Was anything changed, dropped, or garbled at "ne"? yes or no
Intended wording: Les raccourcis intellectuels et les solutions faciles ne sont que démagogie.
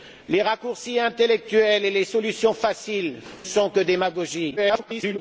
yes